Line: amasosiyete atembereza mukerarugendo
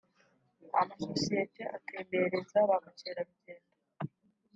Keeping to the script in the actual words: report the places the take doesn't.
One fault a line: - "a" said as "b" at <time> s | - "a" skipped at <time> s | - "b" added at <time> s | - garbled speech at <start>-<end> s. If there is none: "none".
- "ba" added at 2.7 s